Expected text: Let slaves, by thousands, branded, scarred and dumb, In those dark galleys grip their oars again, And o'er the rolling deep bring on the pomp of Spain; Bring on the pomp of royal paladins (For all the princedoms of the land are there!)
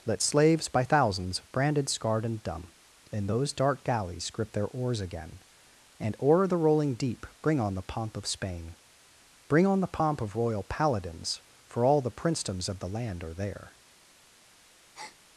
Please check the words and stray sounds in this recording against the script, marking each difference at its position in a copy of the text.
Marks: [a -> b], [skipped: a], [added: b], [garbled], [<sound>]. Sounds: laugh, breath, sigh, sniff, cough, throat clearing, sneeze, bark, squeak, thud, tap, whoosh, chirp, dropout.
Let slaves, by thousands, branded, scarred and dumb, In those dark galleys grip their oars again, And o'er the rolling deep bring on the pomp of Spain; Bring on the pomp of royal paladins (For all the princedoms of the land are there!) [breath]